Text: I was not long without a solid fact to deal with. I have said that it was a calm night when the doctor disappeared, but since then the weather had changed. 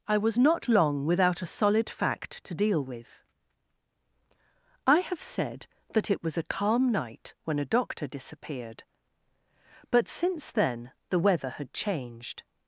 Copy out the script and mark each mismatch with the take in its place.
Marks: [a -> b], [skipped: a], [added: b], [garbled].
I was not long without a solid fact to deal with. I have said that it was a calm night when [the -> a] doctor disappeared, but since then the weather had changed.